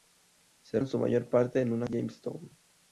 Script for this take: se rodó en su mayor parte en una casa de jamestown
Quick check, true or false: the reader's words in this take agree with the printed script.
false